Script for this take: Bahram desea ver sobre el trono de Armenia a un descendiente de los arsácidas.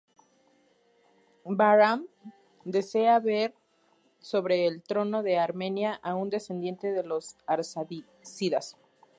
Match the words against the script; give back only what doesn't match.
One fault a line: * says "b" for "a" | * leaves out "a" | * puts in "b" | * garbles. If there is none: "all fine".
all fine